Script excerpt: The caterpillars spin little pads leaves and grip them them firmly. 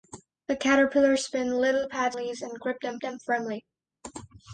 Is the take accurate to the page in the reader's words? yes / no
yes